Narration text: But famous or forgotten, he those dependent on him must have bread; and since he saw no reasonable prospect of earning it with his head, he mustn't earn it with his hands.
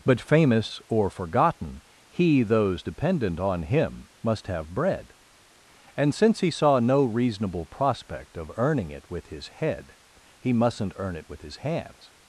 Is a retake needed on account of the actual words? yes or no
no